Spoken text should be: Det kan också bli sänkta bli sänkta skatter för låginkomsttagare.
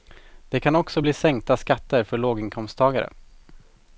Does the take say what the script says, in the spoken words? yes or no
no